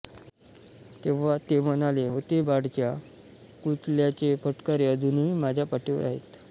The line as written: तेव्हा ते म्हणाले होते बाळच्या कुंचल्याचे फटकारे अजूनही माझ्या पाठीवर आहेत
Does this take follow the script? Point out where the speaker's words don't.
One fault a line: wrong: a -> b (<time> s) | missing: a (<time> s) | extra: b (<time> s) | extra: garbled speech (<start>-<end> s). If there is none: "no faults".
no faults